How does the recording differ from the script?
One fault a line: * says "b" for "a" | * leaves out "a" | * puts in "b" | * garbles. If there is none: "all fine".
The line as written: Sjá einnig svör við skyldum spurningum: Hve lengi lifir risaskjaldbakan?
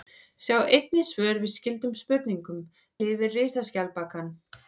* leaves out "Hve lengi"